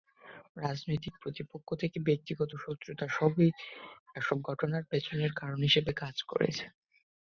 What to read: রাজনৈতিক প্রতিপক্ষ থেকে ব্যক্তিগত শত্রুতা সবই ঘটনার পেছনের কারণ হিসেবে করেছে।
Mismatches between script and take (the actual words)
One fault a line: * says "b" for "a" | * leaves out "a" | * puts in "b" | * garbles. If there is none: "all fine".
* puts in "এসব"
* puts in "কাজ"